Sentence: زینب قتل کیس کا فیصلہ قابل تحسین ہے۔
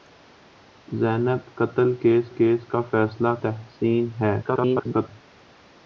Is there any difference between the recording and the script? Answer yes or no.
yes